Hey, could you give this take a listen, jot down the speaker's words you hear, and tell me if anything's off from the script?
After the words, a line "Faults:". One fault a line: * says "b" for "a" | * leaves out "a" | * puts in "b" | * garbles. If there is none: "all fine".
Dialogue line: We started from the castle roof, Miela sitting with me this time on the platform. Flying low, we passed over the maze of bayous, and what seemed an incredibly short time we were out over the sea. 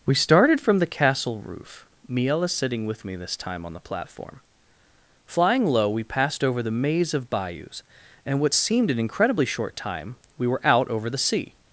We started from the castle roof, Miela sitting with me this time on the platform. Flying low, we passed over the maze of bayous, and what seemed an incredibly short time we were out over the sea.
Faults:
all fine